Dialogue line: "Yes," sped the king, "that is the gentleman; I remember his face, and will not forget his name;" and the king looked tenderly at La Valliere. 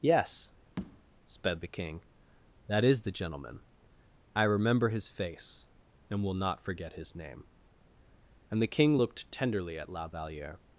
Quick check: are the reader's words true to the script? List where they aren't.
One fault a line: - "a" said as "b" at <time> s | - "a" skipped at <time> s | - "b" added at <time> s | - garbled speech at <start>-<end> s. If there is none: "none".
none